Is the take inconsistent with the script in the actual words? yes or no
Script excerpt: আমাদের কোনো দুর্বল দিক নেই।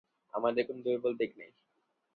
no